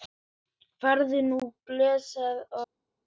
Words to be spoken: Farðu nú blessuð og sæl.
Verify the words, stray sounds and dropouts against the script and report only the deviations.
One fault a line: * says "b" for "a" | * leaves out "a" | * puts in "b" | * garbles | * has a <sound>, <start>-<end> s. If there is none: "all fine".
all fine